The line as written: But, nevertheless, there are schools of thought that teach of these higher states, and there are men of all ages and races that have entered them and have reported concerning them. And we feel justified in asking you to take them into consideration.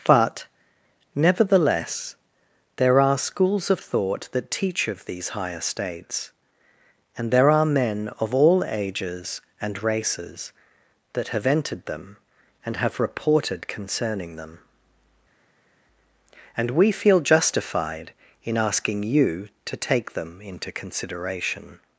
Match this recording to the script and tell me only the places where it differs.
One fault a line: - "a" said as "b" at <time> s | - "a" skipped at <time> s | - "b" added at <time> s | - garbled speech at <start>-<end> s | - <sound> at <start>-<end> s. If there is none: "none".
none